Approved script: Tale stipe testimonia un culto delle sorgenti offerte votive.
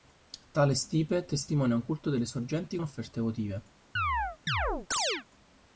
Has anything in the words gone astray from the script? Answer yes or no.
no